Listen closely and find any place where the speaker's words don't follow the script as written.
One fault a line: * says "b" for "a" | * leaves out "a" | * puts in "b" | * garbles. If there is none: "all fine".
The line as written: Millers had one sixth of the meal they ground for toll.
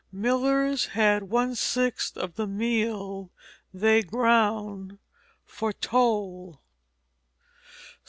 all fine